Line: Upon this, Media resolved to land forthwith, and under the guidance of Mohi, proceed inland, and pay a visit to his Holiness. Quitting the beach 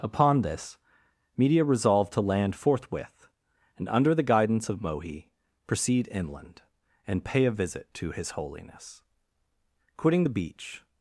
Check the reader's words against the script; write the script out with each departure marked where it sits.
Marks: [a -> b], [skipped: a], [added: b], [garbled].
Upon this, Media resolved to land forthwith, and under the guidance of Mohi, proceed inland, and pay a visit to his Holiness. Quitting the beach